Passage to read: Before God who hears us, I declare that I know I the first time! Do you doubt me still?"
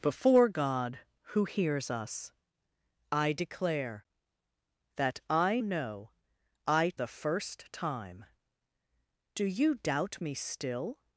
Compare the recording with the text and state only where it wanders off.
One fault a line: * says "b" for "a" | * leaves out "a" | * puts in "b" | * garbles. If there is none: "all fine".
all fine